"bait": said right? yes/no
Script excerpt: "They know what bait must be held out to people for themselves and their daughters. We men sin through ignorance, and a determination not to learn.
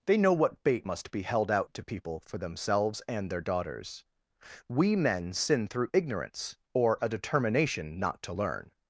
yes